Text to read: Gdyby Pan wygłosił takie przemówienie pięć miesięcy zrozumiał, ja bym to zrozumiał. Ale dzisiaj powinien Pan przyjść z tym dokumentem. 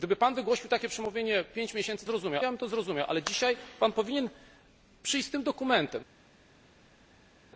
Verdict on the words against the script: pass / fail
pass